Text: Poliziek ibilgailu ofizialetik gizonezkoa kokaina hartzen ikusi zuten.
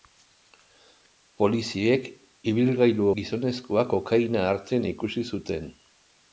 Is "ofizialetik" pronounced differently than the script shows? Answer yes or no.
yes